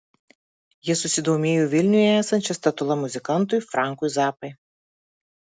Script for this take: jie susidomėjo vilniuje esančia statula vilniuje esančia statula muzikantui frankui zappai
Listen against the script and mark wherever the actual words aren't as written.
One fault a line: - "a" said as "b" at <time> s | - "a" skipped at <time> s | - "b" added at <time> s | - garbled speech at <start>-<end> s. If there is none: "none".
- "vilniuje esančia statula" skipped at 3.0 s